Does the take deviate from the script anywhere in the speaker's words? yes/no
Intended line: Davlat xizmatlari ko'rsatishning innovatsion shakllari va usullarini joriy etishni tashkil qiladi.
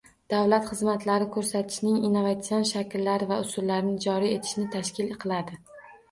no